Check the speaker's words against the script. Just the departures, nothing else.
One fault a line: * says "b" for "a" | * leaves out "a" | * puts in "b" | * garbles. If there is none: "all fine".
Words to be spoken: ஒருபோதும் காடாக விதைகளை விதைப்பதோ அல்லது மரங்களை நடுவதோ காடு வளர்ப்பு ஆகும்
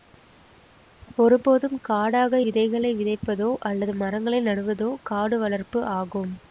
all fine